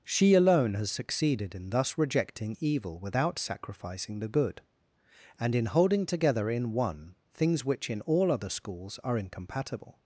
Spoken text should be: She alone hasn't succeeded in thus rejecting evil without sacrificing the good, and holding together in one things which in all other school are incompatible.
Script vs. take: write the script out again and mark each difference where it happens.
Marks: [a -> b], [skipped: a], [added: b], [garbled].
She alone [hasn't -> has] succeeded in thus rejecting evil without sacrificing the good, and [added: in] holding together in one things which in all other [school -> schools] are incompatible.